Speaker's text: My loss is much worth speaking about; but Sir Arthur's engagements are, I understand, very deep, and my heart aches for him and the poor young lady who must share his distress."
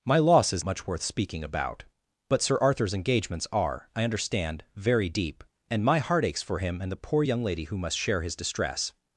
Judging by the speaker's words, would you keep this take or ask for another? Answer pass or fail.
pass